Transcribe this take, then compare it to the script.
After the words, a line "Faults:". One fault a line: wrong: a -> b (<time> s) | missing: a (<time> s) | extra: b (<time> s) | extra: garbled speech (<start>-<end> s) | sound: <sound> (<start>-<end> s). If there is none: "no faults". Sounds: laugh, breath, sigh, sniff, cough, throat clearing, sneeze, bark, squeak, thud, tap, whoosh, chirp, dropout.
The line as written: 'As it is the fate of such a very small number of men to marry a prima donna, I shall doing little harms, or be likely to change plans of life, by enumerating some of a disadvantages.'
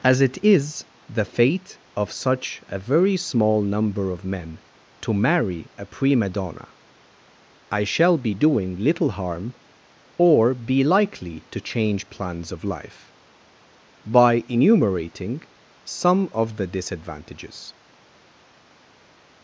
'As it is the fate of such a very small number of men to marry a prima donna, I shall be doing little harm, or be likely to change plans of life, by enumerating some of the disadvantages.'
Faults:
extra: be (8.2 s)
wrong: harms -> harm (9.1 s)
wrong: a -> the (16.6 s)